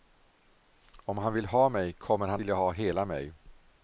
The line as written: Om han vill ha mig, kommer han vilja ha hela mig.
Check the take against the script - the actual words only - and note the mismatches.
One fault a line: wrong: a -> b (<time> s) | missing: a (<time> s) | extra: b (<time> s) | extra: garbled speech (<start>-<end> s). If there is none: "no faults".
no faults